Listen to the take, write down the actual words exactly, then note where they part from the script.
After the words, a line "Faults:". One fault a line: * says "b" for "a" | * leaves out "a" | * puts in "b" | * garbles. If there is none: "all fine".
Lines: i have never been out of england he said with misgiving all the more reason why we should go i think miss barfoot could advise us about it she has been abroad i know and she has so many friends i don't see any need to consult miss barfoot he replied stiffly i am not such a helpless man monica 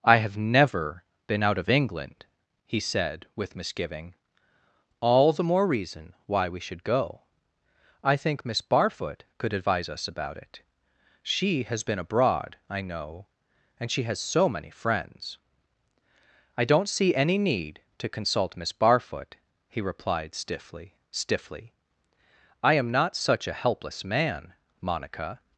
i have never been out of england he said with misgiving all the more reason why we should go i think miss barfoot could advise us about it she has been abroad i know and she has so many friends i don't see any need to consult miss barfoot he replied stiffly stiffly i am not such a helpless man monica
Faults:
* puts in "stiffly"